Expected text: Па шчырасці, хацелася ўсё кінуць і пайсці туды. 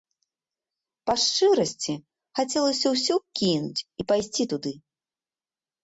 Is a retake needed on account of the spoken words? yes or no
no